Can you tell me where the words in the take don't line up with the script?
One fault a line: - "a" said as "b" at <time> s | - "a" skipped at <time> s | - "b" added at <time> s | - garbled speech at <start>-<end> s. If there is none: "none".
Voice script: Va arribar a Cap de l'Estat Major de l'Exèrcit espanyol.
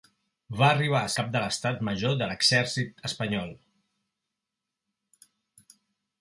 none